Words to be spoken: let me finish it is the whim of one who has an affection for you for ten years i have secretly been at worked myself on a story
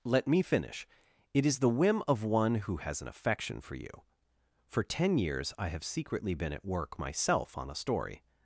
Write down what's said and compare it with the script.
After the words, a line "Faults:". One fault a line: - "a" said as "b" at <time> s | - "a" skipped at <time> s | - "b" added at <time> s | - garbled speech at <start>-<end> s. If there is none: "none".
let me finish it is the whim of one who has an affection for you for ten years i have secretly been at work myself on a story
Faults:
- "worked" said as "work" at 6.7 s